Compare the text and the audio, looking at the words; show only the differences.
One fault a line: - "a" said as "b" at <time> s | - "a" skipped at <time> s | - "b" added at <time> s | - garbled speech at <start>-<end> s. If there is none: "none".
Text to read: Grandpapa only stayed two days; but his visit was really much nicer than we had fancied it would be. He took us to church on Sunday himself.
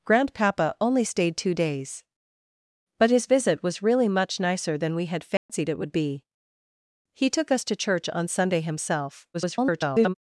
- garbled speech at 9.3-10.1 s